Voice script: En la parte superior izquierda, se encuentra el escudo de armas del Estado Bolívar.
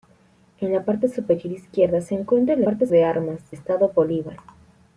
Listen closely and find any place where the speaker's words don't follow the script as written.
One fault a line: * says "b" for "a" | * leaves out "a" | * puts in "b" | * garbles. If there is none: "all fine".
* says "parte" for "escudo"
* leaves out "del"